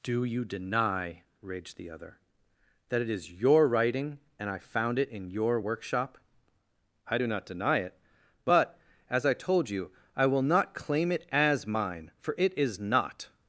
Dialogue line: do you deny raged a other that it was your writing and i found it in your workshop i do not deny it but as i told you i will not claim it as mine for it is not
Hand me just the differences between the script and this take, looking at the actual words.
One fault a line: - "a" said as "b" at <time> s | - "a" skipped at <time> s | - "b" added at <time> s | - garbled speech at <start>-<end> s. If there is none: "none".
- "a" said as "the" at 1.8 s
- "was" said as "is" at 3.1 s